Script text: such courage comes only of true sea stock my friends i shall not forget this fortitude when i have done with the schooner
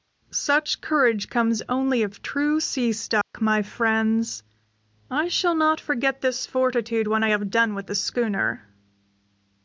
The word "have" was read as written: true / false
true